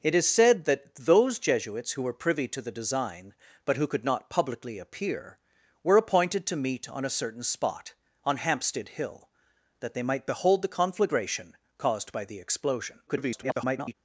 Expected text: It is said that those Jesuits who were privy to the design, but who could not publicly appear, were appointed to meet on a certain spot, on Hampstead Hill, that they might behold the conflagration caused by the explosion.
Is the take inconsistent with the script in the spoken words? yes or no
yes